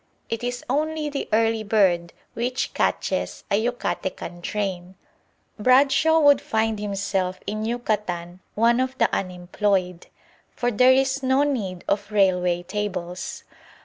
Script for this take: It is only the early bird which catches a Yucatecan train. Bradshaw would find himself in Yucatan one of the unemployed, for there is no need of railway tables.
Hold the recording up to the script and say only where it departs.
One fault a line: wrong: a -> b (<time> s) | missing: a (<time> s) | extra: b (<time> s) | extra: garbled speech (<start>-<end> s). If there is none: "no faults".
no faults